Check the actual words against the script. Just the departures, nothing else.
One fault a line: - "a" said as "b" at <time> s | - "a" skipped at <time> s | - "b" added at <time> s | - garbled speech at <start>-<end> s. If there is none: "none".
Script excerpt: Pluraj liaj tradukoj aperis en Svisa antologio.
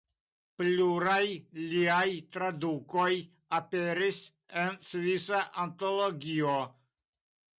none